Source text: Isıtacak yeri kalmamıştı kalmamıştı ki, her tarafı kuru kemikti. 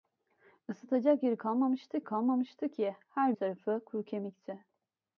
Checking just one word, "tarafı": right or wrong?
right